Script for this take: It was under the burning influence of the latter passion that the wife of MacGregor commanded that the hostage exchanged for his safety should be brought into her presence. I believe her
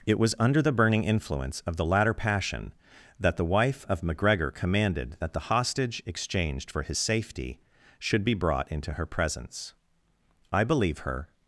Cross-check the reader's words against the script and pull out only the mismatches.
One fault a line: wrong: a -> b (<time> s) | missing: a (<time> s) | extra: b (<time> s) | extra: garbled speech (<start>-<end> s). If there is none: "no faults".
no faults